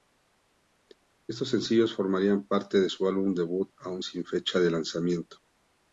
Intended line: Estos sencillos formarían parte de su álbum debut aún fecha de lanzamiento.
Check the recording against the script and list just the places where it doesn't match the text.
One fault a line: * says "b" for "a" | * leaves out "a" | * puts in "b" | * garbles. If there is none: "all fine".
* puts in "sin"